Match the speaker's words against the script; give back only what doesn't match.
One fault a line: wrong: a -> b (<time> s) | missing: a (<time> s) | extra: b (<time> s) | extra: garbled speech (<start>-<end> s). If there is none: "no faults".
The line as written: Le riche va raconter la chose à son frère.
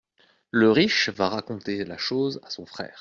no faults